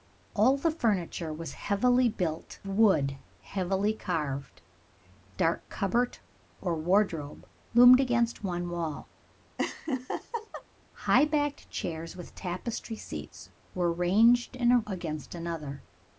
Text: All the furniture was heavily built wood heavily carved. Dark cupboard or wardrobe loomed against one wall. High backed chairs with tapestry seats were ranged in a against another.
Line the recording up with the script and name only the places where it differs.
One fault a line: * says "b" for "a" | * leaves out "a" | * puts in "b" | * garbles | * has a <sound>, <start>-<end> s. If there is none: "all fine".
* has a laugh, 9.6-10.6 s